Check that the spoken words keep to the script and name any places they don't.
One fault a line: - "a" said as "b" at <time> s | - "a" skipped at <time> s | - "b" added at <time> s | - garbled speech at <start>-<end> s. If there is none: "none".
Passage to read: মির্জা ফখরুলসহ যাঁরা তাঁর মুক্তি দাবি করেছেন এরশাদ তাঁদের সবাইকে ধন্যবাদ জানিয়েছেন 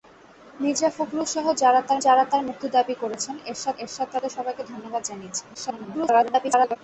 - "যাঁরা তাঁর" added at 2.0 s
- "এরশাদ" added at 3.8 s
- garbled speech at 5.5-6.8 s